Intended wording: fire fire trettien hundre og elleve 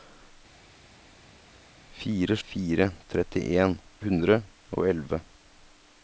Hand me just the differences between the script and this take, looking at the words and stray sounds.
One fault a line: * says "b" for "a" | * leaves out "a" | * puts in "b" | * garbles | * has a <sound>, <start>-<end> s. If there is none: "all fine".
all fine